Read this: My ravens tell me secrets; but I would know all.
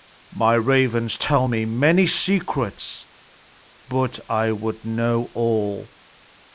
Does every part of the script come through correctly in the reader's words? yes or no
no